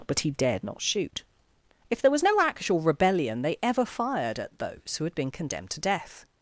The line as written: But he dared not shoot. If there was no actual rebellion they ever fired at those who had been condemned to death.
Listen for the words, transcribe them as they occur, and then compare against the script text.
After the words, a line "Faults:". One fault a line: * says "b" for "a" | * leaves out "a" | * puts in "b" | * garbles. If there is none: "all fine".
But he dared not shoot. If there was no actual rebellion they ever fired at those who had been condemned to death.
Faults:
all fine